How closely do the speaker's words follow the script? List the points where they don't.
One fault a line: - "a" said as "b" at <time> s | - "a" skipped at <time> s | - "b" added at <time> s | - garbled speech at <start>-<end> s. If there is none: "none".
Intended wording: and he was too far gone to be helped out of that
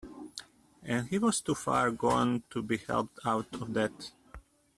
none